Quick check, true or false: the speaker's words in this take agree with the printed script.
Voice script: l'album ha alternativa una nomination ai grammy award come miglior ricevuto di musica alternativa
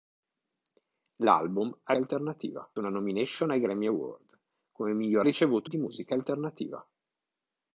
true